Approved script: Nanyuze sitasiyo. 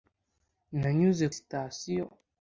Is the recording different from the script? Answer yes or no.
no